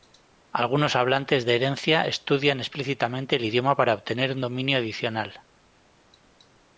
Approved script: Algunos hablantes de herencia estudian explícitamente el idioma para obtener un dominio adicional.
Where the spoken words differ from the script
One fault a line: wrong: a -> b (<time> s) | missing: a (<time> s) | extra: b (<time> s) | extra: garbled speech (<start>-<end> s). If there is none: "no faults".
no faults